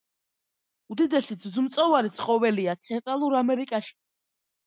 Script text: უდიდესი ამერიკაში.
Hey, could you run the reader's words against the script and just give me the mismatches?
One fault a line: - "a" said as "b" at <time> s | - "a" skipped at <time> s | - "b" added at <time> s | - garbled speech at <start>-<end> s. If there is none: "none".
- "ძუძუმწოვარი ცხოველია ცენტრალურ" added at 1.4 s